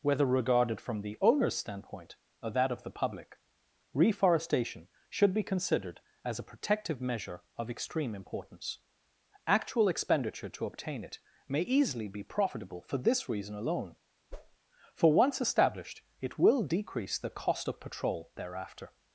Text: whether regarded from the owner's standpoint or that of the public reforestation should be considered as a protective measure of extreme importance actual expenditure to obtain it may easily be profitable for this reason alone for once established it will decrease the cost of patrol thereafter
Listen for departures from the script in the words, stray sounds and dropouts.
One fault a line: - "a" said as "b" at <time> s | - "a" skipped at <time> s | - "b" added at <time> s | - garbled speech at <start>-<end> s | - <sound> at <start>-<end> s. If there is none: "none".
- whoosh at 14.3-14.6 s